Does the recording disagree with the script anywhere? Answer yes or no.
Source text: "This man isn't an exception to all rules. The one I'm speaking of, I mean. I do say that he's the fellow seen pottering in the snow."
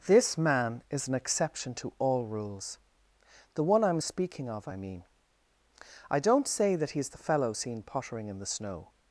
yes